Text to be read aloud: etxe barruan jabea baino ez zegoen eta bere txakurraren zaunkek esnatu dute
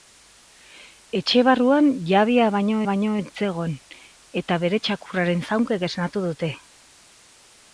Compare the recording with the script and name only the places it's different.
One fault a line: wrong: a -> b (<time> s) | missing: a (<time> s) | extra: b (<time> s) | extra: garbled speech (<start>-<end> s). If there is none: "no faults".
extra: baino (2.9 s)